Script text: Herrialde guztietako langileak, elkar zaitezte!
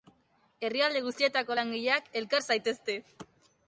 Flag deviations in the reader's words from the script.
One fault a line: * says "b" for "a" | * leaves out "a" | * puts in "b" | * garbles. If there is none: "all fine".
all fine